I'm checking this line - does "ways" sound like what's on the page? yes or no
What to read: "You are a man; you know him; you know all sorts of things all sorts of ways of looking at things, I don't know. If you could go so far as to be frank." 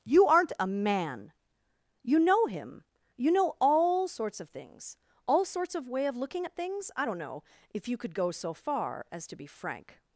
no